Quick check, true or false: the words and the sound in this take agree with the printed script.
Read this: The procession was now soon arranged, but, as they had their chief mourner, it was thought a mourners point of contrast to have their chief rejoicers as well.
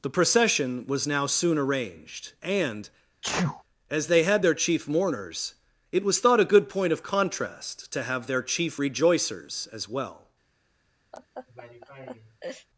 false